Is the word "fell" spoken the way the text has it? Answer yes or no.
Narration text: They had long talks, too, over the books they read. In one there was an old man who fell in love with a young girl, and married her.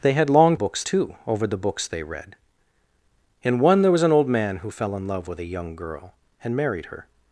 yes